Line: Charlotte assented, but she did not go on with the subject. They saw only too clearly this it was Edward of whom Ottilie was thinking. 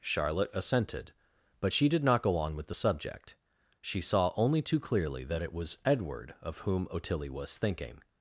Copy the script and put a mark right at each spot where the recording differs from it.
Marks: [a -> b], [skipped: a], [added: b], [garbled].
Charlotte assented, but she did not go on with the subject. [They -> She] saw only too clearly [this -> that] it was Edward of whom Ottilie was thinking.